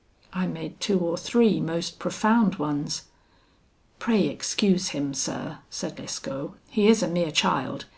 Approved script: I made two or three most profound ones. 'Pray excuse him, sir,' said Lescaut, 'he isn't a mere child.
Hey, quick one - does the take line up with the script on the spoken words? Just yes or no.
no